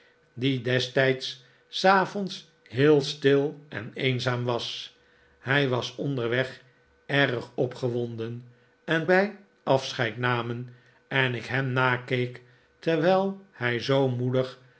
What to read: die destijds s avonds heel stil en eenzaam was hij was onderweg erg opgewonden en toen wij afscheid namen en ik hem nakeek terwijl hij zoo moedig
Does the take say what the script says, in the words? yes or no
no